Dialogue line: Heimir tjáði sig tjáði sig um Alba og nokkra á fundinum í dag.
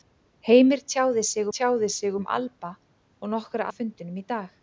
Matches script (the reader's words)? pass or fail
pass